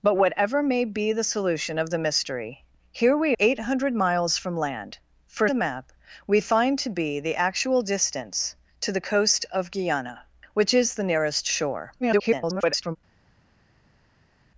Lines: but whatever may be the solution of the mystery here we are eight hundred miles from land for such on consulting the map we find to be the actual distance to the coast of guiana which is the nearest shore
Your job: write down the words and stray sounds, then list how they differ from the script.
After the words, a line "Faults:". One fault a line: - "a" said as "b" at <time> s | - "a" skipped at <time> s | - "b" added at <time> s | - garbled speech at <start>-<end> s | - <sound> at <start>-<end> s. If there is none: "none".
but whatever may be the solution of the mystery here we eight hundred miles from land for the map we find to be the actual distance to the coast of guiana which is the nearest shore [garbled]
Faults:
- "are" skipped at 3.4 s
- "such on consulting" skipped at 5.5 s
- garbled speech at 12.0-13.0 s